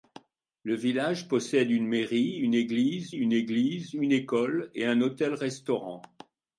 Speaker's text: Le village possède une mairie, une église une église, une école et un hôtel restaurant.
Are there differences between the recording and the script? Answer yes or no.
no